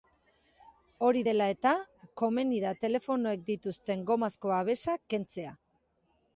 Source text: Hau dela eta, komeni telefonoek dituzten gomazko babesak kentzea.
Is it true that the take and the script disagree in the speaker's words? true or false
true